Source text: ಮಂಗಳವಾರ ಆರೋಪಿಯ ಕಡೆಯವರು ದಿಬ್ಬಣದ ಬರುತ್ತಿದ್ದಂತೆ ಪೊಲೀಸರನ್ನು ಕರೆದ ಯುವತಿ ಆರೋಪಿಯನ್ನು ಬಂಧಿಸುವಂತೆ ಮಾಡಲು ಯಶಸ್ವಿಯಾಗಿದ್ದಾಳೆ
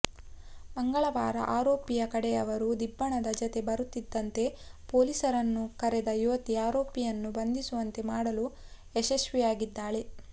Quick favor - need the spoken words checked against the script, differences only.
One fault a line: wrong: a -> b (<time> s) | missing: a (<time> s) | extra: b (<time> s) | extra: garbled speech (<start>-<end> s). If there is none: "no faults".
extra: ಜತೆ (3.4 s)